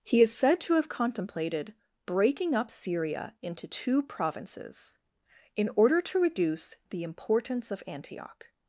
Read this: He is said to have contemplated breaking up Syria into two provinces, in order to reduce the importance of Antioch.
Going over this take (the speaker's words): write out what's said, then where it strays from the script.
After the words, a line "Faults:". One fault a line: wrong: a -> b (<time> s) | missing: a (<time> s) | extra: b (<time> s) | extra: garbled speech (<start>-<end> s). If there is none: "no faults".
He is said to have contemplated breaking up Syria into two provinces, in order to reduce the importance of Antioch.
Faults:
no faults